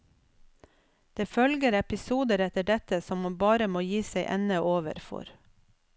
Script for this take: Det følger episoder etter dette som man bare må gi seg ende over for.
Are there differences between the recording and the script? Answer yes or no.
no